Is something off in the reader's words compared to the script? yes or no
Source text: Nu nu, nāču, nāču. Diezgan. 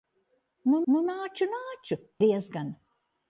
no